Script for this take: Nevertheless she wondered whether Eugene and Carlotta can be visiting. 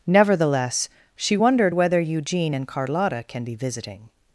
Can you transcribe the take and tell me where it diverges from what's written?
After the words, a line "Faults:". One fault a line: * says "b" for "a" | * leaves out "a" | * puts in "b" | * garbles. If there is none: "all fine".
Nevertheless she wondered whether Eugene and Carlotta can be visiting.
Faults:
all fine